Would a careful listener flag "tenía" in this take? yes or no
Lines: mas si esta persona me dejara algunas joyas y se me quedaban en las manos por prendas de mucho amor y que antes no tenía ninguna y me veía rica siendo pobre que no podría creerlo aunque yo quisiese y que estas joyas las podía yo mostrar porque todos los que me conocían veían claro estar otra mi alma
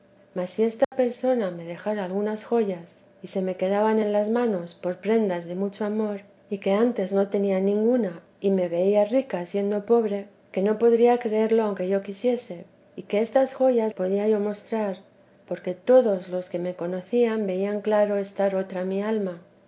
no